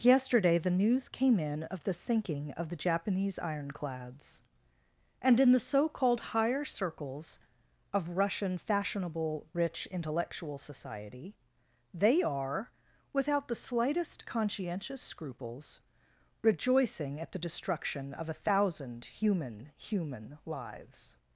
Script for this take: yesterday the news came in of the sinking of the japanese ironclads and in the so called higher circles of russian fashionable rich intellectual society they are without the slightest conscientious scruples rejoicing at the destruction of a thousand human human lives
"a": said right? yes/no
yes